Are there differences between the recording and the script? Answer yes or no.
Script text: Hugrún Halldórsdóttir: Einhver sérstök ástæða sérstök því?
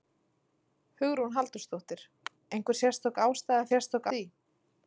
no